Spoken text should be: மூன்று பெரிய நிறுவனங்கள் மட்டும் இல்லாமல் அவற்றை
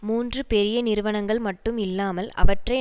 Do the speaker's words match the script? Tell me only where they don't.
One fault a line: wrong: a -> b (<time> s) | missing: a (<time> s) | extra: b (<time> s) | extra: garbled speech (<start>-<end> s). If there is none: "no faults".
no faults